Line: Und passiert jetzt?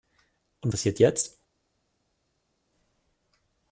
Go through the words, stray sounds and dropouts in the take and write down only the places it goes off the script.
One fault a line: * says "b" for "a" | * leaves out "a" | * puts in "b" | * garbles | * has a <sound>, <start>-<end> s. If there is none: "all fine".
all fine